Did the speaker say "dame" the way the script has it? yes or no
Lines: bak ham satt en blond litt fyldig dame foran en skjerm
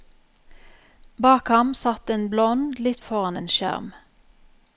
no